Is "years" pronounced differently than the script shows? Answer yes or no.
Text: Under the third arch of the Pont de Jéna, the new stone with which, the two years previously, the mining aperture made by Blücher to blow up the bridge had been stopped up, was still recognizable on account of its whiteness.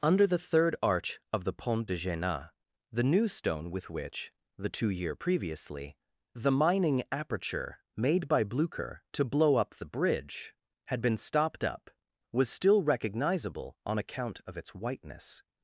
yes